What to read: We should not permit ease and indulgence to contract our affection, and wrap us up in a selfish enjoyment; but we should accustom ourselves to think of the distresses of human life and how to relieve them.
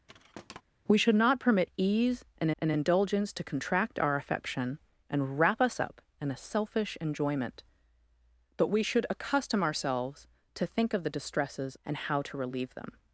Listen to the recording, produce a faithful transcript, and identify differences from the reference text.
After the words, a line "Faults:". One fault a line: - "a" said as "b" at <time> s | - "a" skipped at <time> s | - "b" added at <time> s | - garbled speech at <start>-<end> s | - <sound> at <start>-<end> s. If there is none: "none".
We should not permit ease and and indulgence to contract our affection, and wrap us up in a selfish enjoyment; but we should accustom ourselves to think of the distresses and how to relieve them.
Faults:
- thud at 0.1-0.6 s
- "and" added at 2.6 s
- "of human life" skipped at 11.7 s